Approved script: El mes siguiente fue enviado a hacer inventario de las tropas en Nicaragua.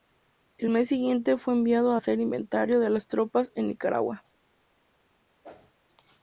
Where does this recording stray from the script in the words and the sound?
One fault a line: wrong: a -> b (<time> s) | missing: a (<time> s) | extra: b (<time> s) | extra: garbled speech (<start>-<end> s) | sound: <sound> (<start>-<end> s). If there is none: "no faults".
sound: whoosh (5.4-5.7 s)